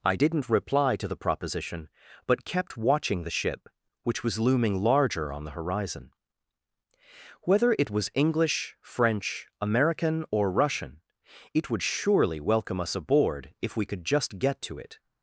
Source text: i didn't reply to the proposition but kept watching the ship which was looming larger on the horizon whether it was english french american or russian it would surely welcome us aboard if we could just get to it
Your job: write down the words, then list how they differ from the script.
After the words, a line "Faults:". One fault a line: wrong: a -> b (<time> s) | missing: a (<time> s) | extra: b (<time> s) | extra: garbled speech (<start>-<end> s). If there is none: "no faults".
i didn't reply to the proposition but kept watching the ship which was looming larger on the horizon whether it was english french american or russian it would surely welcome us aboard if we could just get to it
Faults:
no faults